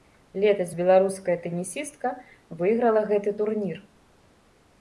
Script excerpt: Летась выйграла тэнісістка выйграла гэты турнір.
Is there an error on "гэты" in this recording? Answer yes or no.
no